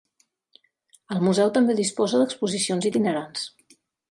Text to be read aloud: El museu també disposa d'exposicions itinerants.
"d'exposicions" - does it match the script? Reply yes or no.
yes